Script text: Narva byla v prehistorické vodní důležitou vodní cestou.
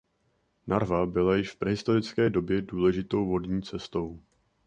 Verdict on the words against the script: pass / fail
fail